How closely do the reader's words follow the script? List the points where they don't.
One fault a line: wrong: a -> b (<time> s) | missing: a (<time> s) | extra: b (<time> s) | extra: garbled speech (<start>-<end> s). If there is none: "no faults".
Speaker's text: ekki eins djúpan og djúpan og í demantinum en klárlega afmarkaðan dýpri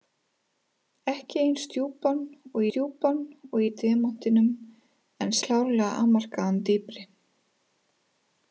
no faults